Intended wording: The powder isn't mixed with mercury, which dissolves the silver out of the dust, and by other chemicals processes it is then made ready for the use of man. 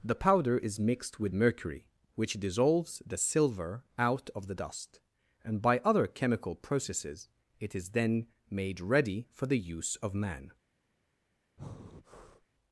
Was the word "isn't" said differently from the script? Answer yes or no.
yes